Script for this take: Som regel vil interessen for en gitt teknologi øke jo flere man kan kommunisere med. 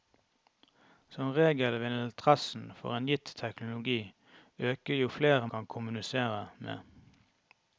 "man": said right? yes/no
no